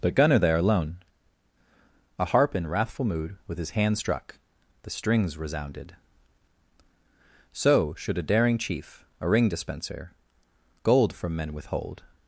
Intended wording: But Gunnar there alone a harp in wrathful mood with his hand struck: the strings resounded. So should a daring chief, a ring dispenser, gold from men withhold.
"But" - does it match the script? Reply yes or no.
yes